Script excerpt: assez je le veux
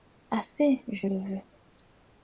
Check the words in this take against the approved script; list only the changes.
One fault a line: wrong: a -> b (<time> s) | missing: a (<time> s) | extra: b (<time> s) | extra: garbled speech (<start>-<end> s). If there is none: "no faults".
no faults